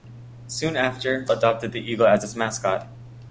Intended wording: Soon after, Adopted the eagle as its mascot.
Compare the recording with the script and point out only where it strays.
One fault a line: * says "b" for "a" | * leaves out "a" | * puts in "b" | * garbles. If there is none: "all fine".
all fine